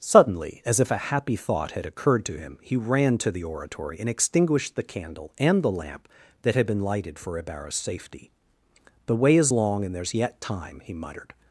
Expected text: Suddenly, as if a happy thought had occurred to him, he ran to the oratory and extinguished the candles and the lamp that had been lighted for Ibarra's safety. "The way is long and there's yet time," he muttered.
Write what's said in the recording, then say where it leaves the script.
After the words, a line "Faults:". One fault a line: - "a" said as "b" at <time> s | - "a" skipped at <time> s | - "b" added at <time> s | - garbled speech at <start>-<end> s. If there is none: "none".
Suddenly, as if a happy thought had occurred to him, he ran to the oratory and extinguished the candle and the lamp that had been lighted for Ibarra's safety. "The way is long and there's yet time," he muttered.
Faults:
- "candles" said as "candle" at 4.8 s